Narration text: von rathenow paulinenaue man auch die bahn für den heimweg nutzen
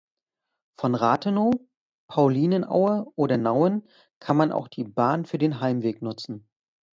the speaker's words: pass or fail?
fail